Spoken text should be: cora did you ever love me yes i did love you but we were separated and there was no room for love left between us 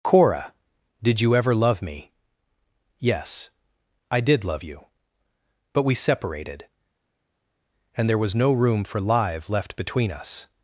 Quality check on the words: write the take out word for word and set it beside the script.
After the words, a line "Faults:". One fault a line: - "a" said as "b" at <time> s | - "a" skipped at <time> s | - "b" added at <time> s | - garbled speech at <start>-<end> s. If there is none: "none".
cora did you ever love me yes i did love you but we separated and there was no room for live left between us
Faults:
- "were" skipped at 5.9 s
- "love" said as "live" at 9.0 s